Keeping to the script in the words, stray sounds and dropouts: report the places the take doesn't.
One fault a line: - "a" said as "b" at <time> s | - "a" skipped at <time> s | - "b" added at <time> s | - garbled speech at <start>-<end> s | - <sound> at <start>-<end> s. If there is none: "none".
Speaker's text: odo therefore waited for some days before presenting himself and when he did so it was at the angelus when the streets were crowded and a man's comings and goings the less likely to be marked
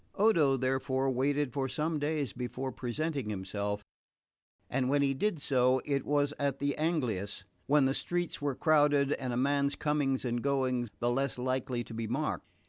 none